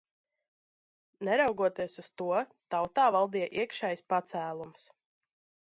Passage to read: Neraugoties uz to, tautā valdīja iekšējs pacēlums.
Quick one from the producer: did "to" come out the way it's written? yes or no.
yes